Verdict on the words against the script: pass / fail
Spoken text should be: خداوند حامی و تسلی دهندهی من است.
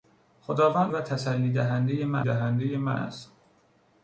fail